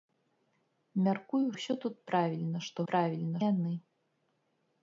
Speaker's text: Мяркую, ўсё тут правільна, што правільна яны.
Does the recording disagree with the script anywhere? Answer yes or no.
no